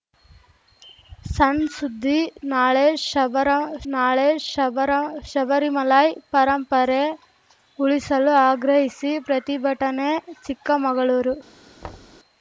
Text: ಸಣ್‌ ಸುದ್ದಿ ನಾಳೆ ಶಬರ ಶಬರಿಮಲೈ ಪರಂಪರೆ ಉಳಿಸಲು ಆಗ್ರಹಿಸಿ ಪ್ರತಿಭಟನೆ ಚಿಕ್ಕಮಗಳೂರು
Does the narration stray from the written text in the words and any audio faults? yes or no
yes